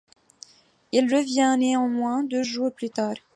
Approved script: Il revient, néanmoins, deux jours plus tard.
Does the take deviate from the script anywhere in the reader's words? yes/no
no